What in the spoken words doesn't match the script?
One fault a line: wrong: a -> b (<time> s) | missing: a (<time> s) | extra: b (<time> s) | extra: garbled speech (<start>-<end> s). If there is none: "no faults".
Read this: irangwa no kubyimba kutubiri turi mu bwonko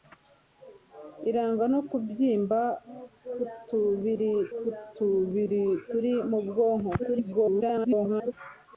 extra: kutubiri (4.6 s)
extra: garbled speech (7.0-8.3 s)